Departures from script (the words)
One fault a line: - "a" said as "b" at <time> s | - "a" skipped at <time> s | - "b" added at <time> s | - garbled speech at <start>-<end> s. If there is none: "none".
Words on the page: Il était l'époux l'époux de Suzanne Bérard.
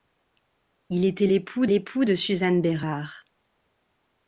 none